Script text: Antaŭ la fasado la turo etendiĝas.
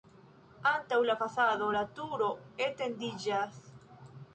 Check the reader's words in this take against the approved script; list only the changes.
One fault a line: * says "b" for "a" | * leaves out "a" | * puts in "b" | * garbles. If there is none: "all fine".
all fine